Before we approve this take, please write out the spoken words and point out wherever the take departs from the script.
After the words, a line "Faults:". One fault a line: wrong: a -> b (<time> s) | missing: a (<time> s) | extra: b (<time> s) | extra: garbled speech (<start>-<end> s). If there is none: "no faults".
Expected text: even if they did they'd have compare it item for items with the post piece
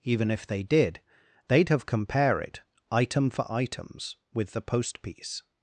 even if they did they'd have compare it item for items with the post piece
Faults:
no faults